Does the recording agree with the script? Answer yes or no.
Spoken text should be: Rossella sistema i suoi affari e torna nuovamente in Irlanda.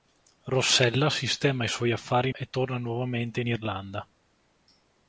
yes